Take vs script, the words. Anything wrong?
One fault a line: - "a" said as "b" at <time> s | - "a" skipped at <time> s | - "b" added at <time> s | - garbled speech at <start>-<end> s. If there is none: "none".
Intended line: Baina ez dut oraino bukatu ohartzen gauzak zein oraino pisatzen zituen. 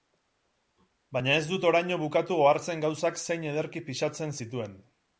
- "oraino" said as "ederki" at 3.5 s